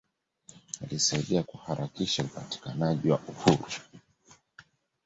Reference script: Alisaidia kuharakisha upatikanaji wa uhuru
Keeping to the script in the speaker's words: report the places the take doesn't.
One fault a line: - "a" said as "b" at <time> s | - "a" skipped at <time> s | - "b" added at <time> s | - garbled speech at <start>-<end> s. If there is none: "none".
none